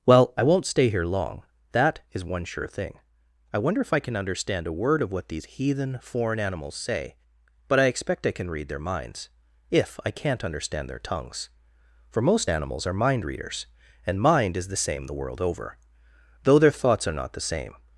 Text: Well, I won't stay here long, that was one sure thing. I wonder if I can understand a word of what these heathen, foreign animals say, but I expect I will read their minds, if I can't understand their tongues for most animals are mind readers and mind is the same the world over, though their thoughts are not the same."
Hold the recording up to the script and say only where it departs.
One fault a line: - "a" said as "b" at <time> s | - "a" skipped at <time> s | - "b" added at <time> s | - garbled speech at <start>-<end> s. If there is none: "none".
- "was" said as "is" at 2.1 s
- "will" said as "can" at 8.3 s